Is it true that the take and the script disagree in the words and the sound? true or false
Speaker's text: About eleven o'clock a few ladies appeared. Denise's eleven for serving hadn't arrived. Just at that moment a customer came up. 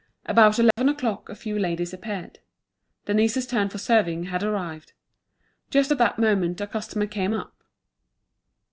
true